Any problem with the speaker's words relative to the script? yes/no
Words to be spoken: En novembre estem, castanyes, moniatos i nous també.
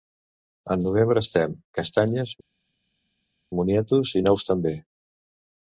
no